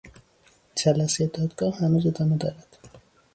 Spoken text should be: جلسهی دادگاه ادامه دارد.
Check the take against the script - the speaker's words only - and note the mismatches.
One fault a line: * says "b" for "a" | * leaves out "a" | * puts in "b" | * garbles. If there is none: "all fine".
* puts in "هنوز"